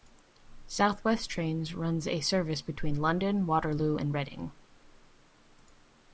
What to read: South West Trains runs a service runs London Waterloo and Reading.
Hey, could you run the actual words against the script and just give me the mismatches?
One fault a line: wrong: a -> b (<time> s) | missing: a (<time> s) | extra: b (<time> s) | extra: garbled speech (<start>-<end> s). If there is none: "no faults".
wrong: runs -> between (2.6 s)